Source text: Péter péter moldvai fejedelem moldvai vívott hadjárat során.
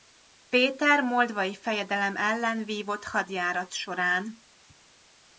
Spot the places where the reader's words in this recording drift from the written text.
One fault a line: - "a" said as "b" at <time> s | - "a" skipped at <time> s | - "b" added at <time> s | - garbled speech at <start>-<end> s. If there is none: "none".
- "péter" skipped at 1.0 s
- "moldvai" said as "ellen" at 2.1 s